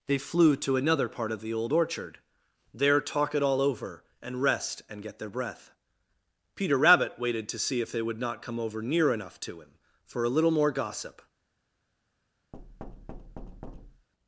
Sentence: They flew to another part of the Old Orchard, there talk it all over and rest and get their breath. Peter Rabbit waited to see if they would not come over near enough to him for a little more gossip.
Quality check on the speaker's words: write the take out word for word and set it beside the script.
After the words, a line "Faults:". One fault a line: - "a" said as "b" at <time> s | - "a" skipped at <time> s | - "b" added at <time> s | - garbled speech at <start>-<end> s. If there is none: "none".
They flew to another part of the Old Orchard, there talk it all over and rest and get their breath. Peter Rabbit waited to see if they would not come over near enough to him for a little more gossip.
Faults:
none